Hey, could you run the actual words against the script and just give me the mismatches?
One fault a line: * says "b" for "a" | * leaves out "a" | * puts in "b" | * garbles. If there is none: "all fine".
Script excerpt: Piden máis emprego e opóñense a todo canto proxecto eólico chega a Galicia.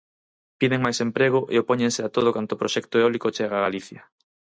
all fine